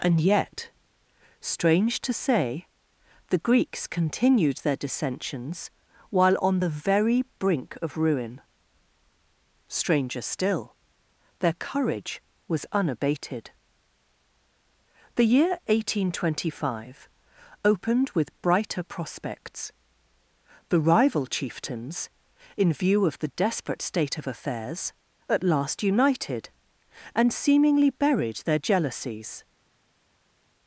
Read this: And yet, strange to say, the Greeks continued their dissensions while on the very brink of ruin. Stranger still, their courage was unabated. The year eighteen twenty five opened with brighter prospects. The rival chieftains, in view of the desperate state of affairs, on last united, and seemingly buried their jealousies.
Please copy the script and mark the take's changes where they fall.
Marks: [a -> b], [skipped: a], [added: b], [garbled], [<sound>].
And yet, strange to say, the Greeks continued their dissensions while on the very brink of ruin. Stranger still, their courage was unabated. The year eighteen twenty five opened with brighter prospects. The rival chieftains, in view of the desperate state of affairs, [on -> at] last united, and seemingly buried their jealousies.